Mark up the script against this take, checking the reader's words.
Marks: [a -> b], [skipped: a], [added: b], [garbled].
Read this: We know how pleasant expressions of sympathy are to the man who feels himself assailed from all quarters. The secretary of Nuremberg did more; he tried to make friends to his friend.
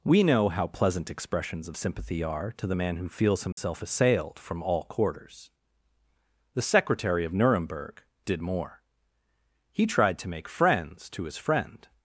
We know how pleasant expressions of sympathy are to the man who feels himself assailed from all quarters. The secretary of Nuremberg did more; he tried to make friends to his friend.